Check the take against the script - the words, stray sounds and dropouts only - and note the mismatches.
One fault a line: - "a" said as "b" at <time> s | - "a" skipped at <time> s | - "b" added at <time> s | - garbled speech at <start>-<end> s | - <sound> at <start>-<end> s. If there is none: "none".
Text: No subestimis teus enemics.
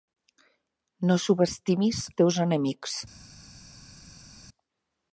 none